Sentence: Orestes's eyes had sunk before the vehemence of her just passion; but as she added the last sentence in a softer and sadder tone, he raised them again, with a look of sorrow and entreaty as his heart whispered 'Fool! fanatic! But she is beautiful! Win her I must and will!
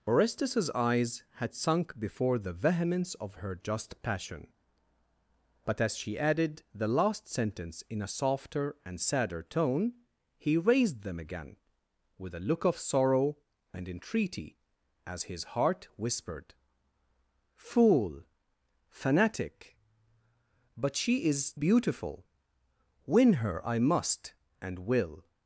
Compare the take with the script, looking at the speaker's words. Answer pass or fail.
pass